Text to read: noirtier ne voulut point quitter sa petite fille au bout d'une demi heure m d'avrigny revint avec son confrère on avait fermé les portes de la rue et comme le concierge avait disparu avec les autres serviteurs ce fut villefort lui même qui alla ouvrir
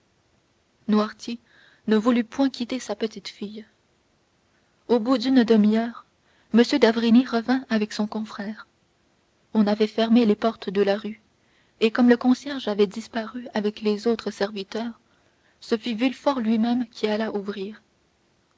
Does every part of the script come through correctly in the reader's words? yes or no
yes